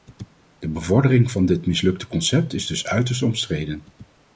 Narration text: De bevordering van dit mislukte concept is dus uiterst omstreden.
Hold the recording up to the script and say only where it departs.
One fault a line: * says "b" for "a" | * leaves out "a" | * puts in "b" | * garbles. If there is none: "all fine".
all fine